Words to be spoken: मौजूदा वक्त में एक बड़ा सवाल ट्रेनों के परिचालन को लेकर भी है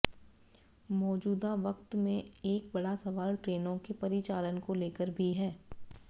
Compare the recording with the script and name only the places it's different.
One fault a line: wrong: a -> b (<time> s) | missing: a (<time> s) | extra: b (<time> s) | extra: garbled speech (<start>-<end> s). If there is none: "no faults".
no faults